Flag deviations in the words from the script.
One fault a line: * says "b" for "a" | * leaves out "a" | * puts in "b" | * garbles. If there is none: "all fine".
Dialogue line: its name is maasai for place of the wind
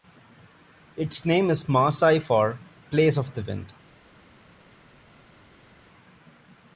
all fine